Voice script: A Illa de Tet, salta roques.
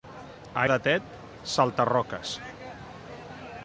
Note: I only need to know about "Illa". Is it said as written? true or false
false